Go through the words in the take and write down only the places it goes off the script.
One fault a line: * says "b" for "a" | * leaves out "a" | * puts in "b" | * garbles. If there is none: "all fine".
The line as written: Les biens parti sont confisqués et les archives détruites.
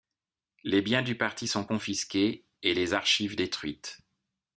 * puts in "du"